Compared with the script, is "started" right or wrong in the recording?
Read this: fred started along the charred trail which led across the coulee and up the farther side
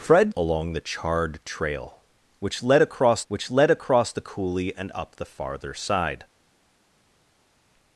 wrong